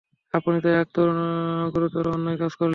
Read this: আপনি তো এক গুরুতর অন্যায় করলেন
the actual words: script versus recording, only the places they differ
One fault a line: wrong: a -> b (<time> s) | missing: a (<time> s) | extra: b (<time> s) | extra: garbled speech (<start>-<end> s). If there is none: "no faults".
extra: কাজ (2.4 s)